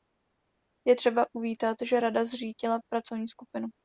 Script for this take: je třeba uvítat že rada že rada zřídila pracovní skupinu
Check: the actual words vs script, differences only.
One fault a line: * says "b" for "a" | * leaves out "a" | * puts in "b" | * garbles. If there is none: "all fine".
* leaves out "že rada"